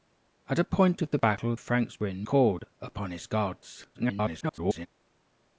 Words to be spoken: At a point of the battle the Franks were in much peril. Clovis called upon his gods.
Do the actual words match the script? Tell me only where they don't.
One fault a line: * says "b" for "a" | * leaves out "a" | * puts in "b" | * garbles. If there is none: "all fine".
* leaves out "the"
* leaves out "much peril Clovis"
* garbles